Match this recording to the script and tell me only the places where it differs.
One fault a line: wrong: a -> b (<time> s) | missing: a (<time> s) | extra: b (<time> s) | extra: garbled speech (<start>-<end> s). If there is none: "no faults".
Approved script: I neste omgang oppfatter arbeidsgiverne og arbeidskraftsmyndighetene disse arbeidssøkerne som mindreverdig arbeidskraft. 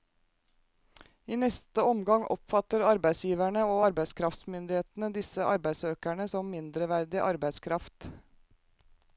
no faults